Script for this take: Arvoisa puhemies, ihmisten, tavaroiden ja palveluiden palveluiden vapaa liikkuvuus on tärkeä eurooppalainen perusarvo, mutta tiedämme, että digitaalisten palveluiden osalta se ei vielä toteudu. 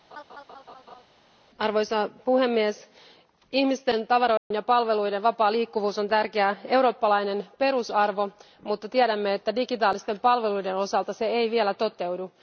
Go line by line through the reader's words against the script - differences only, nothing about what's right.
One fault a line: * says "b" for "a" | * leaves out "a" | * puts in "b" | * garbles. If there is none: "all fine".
* leaves out "palveluiden"